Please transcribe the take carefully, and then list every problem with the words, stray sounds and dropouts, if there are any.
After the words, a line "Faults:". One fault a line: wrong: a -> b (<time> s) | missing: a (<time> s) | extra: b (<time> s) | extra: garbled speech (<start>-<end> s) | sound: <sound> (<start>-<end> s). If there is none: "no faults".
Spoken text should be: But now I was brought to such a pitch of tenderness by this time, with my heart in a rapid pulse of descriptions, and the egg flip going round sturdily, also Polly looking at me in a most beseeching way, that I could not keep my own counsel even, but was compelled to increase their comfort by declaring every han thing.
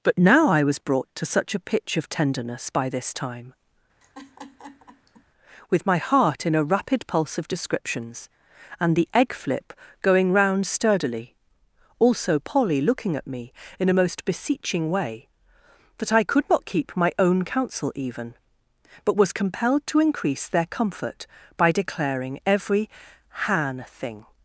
But now I was brought to such a pitch of tenderness by this time, with my heart in a rapid pulse of descriptions, and the egg flip going round sturdily, also Polly looking at me in a most beseeching way, that I could not keep my own counsel even, but was compelled to increase their comfort by declaring every han thing.
Faults:
sound: laugh (4.0-5.2 s)